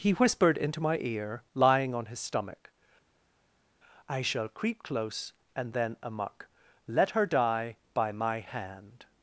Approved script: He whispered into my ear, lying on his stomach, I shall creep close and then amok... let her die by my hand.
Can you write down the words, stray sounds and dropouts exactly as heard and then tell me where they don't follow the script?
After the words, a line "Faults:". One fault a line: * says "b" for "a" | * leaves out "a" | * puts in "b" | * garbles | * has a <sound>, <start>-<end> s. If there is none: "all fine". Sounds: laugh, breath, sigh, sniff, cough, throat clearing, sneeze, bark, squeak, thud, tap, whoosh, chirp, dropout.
He whispered into my ear, lying on his stomach, I shall creep close and then amok... let her die by my hand.
Faults:
all fine